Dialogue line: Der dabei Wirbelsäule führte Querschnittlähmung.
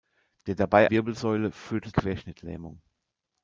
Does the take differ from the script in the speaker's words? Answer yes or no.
no